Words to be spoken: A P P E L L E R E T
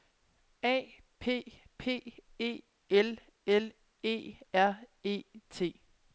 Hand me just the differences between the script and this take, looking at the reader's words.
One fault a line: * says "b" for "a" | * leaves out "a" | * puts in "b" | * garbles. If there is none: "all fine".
all fine